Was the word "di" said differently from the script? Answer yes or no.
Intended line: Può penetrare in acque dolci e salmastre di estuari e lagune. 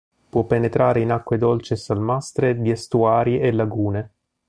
no